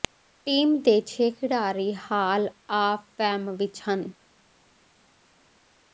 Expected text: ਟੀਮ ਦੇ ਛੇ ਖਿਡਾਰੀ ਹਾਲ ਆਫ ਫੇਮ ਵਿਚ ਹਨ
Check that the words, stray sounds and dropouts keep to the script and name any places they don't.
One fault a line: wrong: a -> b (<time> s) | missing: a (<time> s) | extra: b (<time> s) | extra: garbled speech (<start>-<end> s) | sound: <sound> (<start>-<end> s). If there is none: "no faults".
no faults